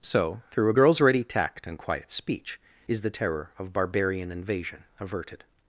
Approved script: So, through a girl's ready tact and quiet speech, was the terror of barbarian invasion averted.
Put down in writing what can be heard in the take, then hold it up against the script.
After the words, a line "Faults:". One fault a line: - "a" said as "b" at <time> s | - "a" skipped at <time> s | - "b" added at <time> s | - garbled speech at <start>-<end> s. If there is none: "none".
So, through a girl's ready tact and quiet speech, is the terror of barbarian invasion averted.
Faults:
- "was" said as "is" at 2.9 s